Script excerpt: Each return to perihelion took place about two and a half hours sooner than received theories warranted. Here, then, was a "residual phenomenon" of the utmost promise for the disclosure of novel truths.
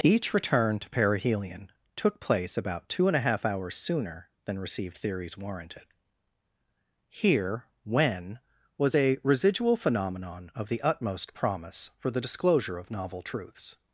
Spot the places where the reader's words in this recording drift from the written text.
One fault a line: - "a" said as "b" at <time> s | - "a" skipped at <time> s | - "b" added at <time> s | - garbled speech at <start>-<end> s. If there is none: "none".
- "then" said as "when" at 7.8 s